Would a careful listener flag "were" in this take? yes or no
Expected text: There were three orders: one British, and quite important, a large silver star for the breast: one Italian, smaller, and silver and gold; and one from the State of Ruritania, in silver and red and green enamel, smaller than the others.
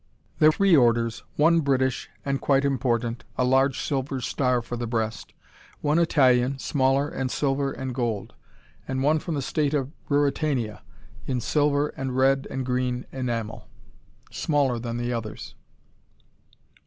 yes